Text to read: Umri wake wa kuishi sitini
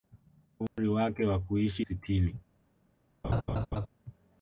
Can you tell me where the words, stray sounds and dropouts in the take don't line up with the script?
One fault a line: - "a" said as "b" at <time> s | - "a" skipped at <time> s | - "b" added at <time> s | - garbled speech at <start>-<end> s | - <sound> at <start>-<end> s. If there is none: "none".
- dropout at 0.7-0.8 s
- laugh at 3.2-3.9 s